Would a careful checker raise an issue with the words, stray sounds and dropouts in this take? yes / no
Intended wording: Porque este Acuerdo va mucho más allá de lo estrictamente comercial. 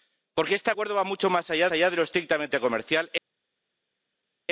yes